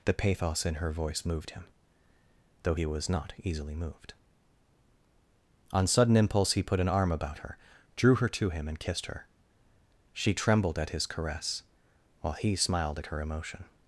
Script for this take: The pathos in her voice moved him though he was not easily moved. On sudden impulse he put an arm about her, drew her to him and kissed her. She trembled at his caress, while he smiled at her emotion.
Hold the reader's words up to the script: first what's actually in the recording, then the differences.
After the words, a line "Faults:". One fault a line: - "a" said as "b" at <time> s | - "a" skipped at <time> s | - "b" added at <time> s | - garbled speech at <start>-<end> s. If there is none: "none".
The pathos in her voice moved him though he was not easily moved. On sudden impulse he put an arm about her, drew her to him and kissed her. She trembled at his caress, while he smiled at her emotion.
Faults:
none